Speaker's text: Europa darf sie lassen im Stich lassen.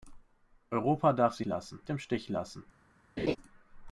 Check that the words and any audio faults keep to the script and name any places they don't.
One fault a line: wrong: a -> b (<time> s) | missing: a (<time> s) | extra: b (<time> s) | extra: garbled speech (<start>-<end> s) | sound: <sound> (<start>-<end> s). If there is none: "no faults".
sound: laugh (3.2-3.4 s)